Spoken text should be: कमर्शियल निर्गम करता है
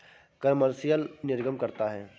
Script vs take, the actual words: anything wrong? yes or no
no